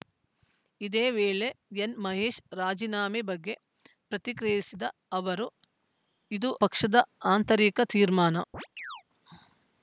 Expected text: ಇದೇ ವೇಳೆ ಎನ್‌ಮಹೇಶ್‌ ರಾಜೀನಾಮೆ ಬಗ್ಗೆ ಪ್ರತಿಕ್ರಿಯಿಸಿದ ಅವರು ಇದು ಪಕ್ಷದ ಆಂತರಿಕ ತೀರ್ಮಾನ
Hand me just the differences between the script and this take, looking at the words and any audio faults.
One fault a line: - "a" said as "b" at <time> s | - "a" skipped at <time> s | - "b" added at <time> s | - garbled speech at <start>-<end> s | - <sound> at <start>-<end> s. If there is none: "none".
- chirp at 8.5-9.0 s